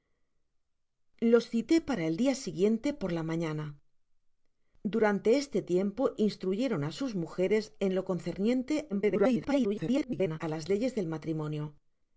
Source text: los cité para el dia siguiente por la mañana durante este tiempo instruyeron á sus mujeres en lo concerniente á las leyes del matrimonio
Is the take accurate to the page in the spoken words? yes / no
no